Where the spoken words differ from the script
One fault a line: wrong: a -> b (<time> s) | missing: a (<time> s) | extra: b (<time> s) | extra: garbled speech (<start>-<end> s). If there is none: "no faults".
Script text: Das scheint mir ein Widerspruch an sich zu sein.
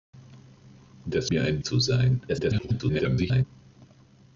missing: scheint (1.3 s)
missing: Widerspruch an sich (1.6 s)
extra: garbled speech (2.3-3.4 s)